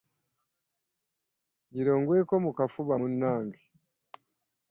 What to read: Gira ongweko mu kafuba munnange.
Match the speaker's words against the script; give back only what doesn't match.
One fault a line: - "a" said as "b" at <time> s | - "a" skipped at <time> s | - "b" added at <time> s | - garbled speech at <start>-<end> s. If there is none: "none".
none